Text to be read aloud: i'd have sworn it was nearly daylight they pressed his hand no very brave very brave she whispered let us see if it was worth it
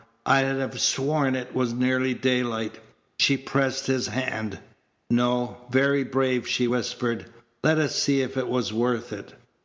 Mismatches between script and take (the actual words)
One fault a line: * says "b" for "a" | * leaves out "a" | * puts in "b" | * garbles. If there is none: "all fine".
* says "she" for "they"
* leaves out "very brave"